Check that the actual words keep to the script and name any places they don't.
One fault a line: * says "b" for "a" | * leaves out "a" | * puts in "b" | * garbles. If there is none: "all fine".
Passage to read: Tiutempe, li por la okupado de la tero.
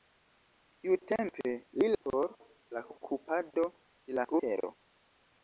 all fine